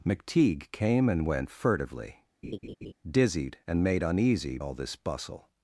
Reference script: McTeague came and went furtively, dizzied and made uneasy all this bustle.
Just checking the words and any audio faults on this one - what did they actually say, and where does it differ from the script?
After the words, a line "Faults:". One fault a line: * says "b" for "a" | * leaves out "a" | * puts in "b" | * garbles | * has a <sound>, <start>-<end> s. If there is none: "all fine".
McTeague came and went furtively, dizzied and made uneasy all this bustle.
Faults:
* has a laugh, 2.4-2.9 s